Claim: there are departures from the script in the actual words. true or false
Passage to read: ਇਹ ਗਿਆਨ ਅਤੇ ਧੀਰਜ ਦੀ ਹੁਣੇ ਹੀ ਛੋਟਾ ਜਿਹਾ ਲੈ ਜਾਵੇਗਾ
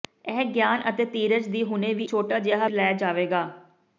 false